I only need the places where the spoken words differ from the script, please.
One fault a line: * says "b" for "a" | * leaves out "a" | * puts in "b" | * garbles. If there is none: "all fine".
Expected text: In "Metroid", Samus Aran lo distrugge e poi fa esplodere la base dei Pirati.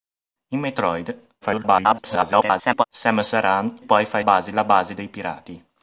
* garbles
* leaves out "lo distrugge e"
* says "base" for "esplodere"